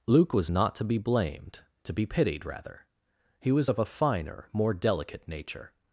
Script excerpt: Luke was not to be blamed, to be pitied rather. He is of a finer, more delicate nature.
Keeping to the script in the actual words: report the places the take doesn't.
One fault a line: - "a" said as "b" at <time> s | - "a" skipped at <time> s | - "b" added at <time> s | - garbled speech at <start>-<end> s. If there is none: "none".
- "is" said as "was" at 3.5 s